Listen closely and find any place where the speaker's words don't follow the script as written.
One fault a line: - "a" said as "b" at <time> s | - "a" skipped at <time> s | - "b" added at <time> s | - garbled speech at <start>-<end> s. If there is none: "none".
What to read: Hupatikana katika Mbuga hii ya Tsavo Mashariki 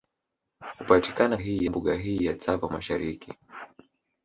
- "katika" said as "hii" at 1.3 s